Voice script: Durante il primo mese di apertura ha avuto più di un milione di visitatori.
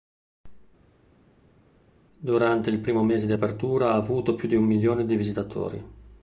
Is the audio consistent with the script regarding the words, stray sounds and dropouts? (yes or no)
yes